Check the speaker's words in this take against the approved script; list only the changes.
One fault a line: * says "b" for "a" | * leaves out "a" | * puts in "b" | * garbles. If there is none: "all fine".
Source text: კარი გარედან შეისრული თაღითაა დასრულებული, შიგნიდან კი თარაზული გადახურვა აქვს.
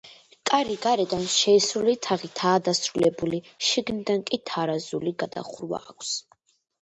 all fine